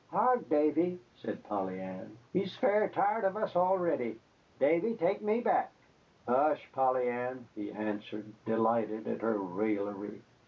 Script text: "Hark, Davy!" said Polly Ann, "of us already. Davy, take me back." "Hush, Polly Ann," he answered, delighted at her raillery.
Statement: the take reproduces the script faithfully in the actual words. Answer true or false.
false